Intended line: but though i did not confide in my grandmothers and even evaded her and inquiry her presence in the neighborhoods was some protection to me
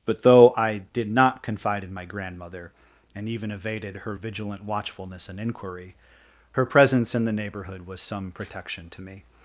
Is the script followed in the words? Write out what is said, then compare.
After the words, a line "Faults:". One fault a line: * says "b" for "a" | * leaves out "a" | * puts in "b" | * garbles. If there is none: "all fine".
but though i did not confide in my grandmother and even evaded her vigilant watchfulness and inquiry her presence in the neighborhood was some protection to me
Faults:
* says "grandmother" for "grandmothers"
* puts in "vigilant watchfulness"
* says "neighborhood" for "neighborhoods"